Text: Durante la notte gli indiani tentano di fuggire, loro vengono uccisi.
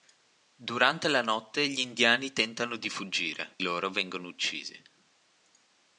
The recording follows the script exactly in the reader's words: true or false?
true